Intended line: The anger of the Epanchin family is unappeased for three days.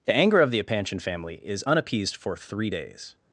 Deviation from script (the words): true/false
false